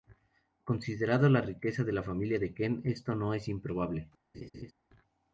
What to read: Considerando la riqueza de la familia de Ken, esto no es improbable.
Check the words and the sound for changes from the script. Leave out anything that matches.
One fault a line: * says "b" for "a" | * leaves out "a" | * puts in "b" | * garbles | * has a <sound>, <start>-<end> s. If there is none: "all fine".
* has a laugh, 4.3-4.7 s